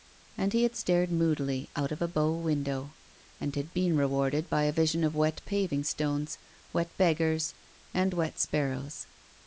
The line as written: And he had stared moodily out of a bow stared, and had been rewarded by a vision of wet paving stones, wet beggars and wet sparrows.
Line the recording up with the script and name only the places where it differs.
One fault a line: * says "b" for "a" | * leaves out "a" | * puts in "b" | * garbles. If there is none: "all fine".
* says "window" for "stared"